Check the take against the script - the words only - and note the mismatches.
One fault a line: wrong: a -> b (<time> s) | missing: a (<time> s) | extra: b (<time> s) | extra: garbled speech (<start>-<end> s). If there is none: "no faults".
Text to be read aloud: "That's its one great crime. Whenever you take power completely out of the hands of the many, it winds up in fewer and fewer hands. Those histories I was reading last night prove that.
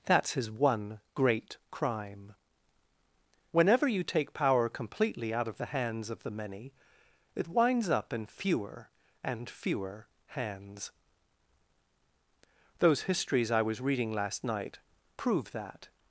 wrong: its -> his (0.3 s)